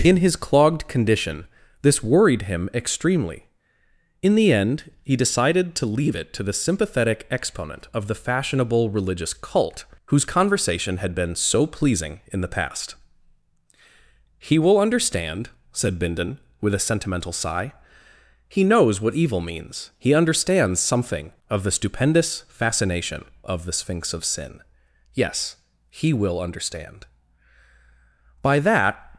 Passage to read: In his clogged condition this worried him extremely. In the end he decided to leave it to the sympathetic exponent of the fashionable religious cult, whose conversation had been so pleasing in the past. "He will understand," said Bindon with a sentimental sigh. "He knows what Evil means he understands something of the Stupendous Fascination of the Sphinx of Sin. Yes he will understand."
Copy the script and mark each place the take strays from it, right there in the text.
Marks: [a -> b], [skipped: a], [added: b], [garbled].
In his clogged condition this worried him extremely. In the end he decided to leave it to the sympathetic exponent of the fashionable religious cult, whose conversation had been so pleasing in the past. "He will understand," said Bindon with a sentimental sigh. "He knows what Evil means he understands something of the Stupendous Fascination of the Sphinx of Sin. Yes he will understand." [added: By that]